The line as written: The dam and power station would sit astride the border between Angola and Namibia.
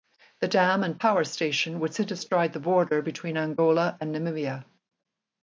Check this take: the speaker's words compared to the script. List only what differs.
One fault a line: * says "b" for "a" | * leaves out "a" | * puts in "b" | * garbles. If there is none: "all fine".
all fine